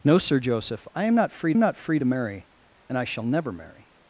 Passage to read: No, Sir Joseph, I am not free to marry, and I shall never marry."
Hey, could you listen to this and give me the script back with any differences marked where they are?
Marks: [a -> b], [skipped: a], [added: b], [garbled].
No, Sir Joseph, I am not free [added: not free] to marry, and I shall never marry."